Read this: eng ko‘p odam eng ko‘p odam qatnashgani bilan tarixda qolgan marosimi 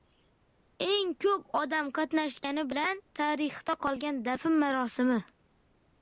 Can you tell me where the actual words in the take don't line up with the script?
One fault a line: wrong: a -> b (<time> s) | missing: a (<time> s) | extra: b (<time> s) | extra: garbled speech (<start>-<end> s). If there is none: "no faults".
missing: eng ko‘p odam (1.9 s)
extra: dafn (4.3 s)